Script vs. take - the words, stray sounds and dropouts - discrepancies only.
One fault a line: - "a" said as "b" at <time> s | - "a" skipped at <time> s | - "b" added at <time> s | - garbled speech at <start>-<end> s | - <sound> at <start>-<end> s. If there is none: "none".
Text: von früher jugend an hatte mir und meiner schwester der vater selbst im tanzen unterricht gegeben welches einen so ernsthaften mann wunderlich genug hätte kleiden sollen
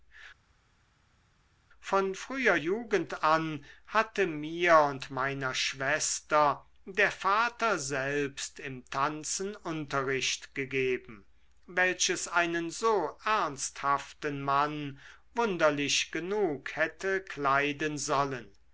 none